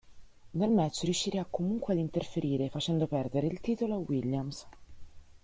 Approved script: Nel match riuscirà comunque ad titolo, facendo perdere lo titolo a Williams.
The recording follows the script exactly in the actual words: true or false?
false